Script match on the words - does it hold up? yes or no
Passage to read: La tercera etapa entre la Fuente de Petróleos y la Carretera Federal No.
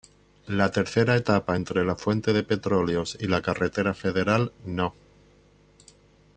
yes